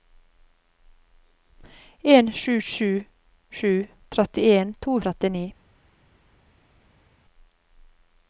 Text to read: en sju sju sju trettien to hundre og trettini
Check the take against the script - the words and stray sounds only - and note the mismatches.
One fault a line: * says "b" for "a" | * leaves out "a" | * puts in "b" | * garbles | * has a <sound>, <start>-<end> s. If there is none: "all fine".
* leaves out "hundre"